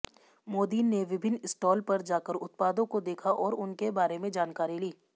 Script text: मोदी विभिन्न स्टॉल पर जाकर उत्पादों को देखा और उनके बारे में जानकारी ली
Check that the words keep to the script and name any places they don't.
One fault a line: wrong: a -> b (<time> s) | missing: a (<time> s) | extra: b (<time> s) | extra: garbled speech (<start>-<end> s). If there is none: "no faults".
extra: ने (0.8 s)